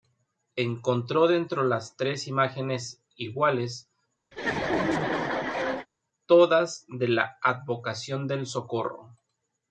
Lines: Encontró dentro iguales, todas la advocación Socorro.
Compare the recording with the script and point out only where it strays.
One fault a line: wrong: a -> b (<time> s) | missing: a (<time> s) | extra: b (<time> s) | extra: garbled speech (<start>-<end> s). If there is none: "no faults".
extra: las tres imágenes (1.6 s)
extra: de (6.9 s)
extra: del (8.3 s)